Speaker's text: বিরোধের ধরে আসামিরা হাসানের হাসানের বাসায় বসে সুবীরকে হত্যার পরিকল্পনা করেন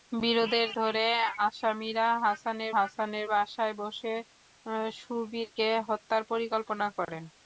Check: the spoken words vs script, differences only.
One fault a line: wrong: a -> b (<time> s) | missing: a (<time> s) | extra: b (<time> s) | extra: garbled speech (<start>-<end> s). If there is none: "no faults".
no faults